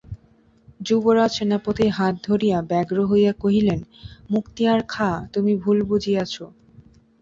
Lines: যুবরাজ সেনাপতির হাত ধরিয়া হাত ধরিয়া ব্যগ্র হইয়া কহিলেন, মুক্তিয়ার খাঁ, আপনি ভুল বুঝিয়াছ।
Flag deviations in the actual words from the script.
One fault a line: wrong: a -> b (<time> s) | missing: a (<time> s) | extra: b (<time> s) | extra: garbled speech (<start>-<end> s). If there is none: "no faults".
missing: হাত ধরিয়া (2.6 s)
wrong: আপনি -> তুমি (5.3 s)